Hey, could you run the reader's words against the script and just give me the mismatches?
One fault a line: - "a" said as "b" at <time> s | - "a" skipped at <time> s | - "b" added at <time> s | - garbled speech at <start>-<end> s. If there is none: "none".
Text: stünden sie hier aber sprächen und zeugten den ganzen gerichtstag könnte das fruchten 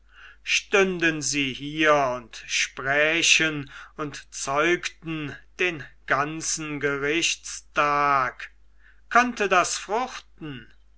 - "aber" said as "und" at 2.1 s